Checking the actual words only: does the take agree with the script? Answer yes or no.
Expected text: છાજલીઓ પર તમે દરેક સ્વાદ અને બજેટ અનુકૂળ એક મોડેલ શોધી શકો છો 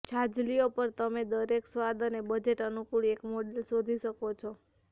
yes